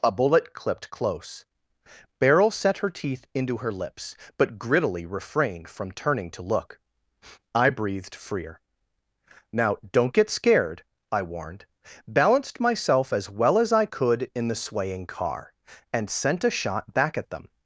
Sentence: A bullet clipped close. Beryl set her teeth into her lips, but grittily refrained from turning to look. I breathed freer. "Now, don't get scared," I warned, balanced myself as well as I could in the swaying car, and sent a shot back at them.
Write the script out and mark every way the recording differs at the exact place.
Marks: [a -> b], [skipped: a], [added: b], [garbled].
A bullet clipped close. Beryl set her teeth into her lips, but grittily refrained from turning to look. I breathed freer. "Now, don't get scared," I warned, balanced myself as well as I could in the swaying car, and sent a shot back at them.